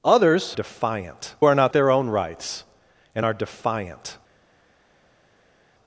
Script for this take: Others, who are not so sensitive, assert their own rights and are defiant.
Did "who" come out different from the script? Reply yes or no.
yes